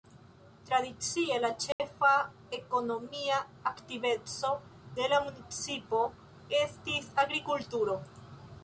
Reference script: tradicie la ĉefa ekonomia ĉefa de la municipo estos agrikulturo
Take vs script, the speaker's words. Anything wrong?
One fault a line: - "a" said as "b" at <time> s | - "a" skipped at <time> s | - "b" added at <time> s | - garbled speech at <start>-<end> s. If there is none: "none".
- "ĉefa" said as "aktiveco" at 3.7 s
- "estos" said as "estis" at 6.6 s